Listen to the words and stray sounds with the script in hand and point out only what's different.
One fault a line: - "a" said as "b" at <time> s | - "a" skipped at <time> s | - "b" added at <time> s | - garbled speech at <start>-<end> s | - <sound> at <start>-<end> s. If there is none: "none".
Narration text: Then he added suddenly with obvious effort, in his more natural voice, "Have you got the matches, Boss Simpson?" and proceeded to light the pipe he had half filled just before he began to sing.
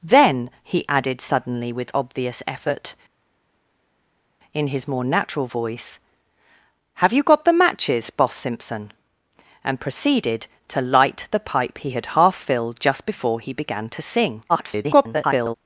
- garbled speech at 14.5-15.5 s